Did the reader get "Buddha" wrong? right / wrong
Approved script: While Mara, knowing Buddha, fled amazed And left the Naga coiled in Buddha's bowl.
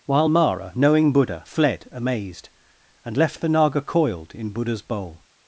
right